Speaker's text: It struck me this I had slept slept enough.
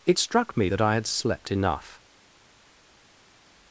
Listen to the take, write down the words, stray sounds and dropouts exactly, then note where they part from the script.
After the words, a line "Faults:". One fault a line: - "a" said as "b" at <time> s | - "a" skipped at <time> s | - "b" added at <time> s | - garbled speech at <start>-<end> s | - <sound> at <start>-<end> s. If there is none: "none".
It struck me that I had slept enough.
Faults:
- "this" said as "that" at 0.7 s
- "slept" skipped at 1.5 s